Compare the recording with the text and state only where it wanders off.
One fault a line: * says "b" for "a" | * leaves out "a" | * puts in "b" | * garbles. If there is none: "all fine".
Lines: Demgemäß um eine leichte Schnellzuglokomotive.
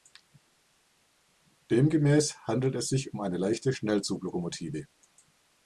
* puts in "handelt es sich"